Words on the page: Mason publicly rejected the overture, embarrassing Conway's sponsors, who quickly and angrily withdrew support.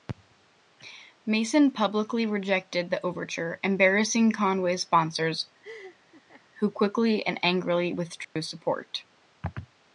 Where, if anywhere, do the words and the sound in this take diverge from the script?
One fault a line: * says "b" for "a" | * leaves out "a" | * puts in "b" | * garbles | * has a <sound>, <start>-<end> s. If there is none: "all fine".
* has a laugh, 5.6-6.4 s
* has a dropout, 8.2-8.4 s